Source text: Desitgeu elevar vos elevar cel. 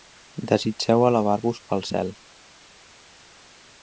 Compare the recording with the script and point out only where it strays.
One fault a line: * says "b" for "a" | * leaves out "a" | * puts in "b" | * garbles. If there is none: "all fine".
* says "pel" for "elevar"